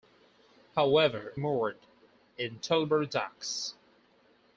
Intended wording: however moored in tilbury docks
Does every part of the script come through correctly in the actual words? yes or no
yes